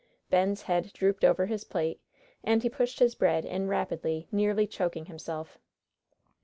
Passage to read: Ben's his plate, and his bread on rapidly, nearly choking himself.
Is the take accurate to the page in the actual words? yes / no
no